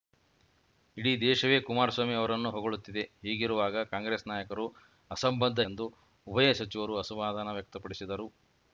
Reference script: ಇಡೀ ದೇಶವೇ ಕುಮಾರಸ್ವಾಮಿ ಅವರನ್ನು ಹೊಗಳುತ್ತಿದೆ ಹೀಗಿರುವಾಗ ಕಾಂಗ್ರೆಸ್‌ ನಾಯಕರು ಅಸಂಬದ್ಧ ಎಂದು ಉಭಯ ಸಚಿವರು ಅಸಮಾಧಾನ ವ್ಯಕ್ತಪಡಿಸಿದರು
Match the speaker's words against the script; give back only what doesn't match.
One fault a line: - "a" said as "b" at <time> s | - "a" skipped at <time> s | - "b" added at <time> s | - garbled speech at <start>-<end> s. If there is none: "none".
none